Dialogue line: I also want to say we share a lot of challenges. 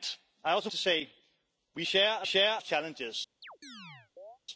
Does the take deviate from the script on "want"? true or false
true